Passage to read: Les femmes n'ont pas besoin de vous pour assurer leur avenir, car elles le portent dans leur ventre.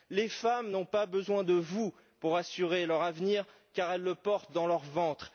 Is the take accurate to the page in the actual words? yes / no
yes